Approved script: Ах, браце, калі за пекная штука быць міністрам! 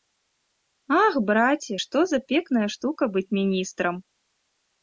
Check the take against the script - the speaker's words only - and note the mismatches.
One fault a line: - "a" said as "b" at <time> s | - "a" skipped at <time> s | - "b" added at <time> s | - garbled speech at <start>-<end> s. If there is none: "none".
- "калі" said as "што" at 1.8 s